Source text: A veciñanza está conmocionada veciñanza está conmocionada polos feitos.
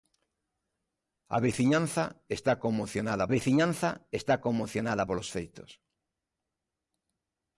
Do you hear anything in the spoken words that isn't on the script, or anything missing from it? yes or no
no